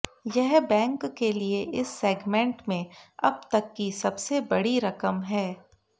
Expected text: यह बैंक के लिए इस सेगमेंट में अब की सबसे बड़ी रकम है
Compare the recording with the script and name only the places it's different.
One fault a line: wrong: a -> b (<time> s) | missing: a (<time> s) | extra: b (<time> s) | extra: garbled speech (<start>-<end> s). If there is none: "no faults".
extra: तक (3.5 s)